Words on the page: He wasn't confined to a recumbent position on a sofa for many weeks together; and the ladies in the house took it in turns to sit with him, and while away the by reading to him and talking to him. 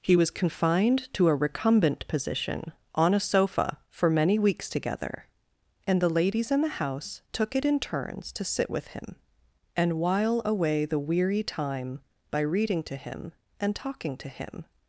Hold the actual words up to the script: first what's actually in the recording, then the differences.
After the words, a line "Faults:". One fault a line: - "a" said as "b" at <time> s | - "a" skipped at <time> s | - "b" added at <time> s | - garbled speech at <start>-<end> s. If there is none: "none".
He was confined to a recumbent position on a sofa for many weeks together; and the ladies in the house took it in turns to sit with him, and while away the weary time by reading to him and talking to him.
Faults:
- "wasn't" said as "was" at 0.1 s
- "weary time" added at 11.0 s